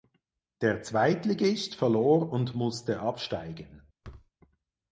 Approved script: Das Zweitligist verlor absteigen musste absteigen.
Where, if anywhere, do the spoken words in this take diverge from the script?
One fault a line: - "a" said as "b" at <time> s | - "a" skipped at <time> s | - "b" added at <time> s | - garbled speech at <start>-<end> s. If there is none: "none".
- "Das" said as "Der" at 0.6 s
- "absteigen" said as "und" at 2.3 s